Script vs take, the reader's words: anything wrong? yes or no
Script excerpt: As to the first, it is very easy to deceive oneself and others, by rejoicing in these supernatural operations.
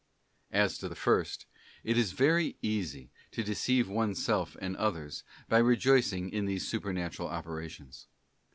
no